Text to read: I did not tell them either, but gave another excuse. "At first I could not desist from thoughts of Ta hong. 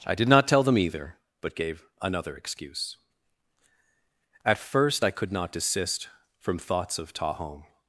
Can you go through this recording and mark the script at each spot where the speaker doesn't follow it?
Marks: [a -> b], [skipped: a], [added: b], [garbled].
I did not tell them either, but gave another excuse. "At first I could not desist from thoughts of Ta hong.